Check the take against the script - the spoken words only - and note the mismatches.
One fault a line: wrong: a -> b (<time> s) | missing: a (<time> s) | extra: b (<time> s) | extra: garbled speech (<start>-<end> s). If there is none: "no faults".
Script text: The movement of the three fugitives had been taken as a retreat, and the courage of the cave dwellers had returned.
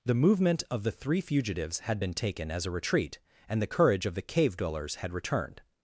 no faults